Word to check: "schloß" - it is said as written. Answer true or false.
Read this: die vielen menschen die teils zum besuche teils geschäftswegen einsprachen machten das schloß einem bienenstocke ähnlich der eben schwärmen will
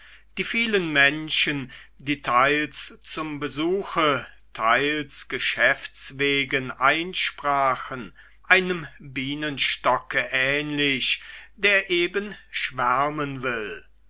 false